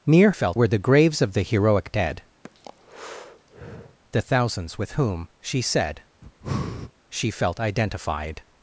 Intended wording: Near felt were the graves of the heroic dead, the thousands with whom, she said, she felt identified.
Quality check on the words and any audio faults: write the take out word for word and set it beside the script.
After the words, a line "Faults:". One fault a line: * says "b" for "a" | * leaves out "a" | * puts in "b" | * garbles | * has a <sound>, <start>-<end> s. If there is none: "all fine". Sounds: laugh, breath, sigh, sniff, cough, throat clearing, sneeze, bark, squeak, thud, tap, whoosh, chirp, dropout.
Near felt were the graves of the heroic dead, the thousands with whom, she said, she felt identified.
Faults:
* has a breath, 2.4-4.0 s
* has a breath, 6.2-6.9 s